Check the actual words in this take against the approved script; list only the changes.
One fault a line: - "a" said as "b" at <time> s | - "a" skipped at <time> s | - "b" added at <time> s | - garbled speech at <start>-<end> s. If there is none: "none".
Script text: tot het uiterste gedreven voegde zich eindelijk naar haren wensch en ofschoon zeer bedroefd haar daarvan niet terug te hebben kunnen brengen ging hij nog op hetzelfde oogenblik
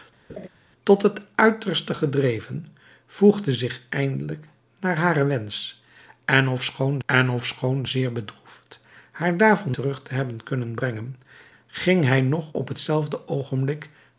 - "en ofschoon" added at 7.0 s
- "niet" skipped at 9.8 s